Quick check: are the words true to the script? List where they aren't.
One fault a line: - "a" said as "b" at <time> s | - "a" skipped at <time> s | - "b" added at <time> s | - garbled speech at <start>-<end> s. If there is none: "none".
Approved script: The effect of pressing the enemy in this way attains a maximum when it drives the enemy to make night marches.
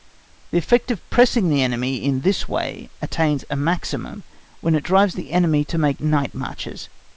none